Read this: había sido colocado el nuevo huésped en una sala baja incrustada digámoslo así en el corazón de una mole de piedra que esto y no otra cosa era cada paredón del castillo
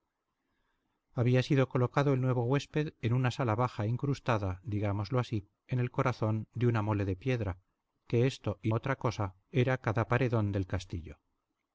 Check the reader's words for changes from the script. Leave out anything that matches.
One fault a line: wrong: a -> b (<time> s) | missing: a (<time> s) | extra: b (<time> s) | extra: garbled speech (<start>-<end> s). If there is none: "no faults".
missing: no (8.7 s)